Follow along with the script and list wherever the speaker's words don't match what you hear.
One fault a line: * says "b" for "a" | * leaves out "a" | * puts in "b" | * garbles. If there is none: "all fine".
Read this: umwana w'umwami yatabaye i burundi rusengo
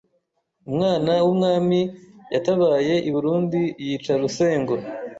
* puts in "yica"